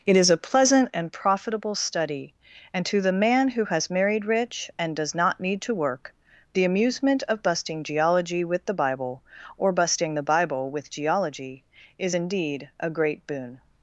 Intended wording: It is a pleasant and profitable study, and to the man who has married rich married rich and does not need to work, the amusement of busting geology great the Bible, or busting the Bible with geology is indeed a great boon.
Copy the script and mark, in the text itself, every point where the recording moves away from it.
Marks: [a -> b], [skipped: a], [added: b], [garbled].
It is a pleasant and profitable study, and to the man who has married rich [skipped: married rich] and does not need to work, the amusement of busting geology [great -> with] the Bible, or busting the Bible with geology is indeed a great boon.